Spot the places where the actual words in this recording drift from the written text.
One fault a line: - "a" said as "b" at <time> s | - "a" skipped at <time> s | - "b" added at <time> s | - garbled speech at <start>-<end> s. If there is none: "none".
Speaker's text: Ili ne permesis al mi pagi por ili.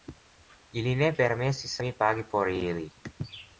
- "al" skipped at 1.8 s